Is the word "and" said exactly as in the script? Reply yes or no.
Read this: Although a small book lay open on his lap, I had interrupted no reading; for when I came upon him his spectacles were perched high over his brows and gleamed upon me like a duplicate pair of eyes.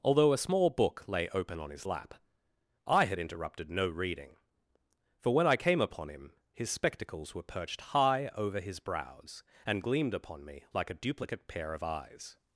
yes